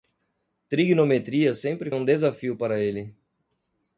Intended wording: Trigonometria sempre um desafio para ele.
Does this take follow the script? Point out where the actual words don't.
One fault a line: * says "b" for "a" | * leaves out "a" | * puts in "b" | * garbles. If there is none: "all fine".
all fine